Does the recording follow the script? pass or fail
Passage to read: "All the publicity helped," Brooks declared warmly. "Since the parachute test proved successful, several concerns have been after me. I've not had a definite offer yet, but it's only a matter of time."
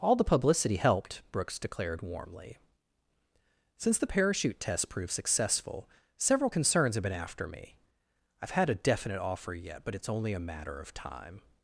fail